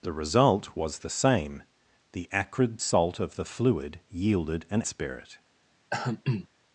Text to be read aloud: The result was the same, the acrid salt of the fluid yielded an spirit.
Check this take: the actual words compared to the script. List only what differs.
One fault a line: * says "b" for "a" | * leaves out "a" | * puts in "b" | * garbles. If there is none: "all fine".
all fine